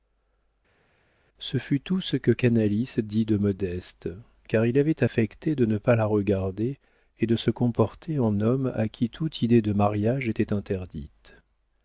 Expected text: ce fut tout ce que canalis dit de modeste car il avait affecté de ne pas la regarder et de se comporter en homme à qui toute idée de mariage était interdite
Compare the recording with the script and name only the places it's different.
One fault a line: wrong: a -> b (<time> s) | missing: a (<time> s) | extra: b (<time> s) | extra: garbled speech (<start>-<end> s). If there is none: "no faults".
no faults